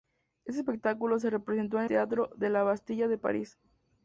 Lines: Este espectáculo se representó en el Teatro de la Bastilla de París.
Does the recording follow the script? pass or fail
fail